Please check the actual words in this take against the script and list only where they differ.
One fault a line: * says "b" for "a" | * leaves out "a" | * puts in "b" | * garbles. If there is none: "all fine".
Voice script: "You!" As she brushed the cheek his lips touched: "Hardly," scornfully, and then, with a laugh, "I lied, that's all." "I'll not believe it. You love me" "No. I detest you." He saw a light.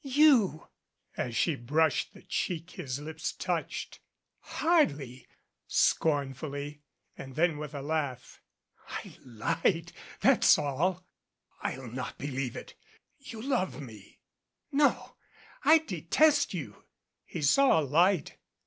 all fine